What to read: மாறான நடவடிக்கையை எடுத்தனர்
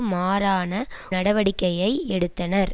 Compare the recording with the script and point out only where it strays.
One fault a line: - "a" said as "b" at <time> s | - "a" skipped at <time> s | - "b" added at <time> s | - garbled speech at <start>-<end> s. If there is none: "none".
none